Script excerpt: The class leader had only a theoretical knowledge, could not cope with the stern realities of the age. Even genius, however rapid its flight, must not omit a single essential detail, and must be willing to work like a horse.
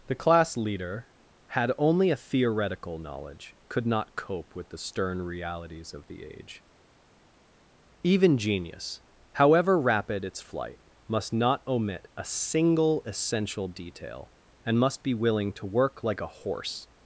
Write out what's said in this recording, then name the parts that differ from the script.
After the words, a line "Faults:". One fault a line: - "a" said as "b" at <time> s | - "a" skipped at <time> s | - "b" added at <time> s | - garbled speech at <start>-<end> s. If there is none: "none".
The class leader had only a theoretical knowledge, could not cope with the stern realities of the age. Even genius, however rapid its flight, must not omit a single essential detail, and must be willing to work like a horse.
Faults:
none